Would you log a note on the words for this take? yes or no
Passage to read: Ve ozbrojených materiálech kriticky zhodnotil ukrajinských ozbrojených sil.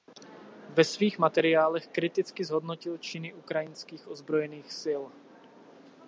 yes